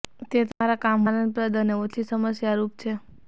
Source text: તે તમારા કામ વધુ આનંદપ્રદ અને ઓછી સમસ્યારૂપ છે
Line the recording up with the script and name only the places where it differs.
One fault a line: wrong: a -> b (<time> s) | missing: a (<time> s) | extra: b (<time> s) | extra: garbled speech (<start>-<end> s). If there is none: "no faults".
missing: વધુ (1.0 s)